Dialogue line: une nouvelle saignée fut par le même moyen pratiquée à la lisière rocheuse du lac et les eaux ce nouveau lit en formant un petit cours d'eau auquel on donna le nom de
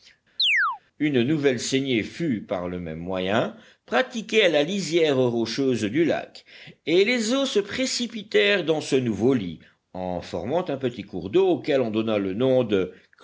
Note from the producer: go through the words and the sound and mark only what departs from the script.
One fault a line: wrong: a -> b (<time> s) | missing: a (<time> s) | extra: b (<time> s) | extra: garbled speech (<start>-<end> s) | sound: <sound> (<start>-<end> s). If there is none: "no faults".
sound: chirp (0.4-0.8 s)
extra: se précipitèrent dans (7.5 s)